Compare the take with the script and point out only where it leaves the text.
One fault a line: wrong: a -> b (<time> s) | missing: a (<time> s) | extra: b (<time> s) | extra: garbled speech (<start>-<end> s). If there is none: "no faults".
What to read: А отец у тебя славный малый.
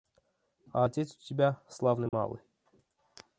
no faults